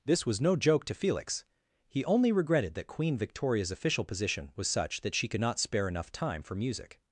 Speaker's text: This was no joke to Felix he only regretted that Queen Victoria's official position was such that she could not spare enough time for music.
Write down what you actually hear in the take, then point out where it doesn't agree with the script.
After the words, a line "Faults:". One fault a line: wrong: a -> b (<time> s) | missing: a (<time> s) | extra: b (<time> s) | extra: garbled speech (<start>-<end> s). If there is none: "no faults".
This was no joke to Felix he only regretted that Queen Victoria's official position was such that she could not spare enough time for music.
Faults:
no faults